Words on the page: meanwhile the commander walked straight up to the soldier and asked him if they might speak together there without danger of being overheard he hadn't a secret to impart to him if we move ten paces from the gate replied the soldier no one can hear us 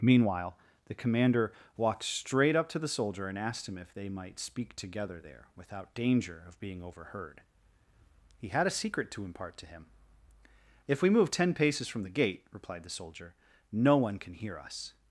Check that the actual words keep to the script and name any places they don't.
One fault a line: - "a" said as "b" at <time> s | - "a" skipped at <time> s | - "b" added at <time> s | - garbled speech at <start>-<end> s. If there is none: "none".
- "hadn't" said as "had" at 8.5 s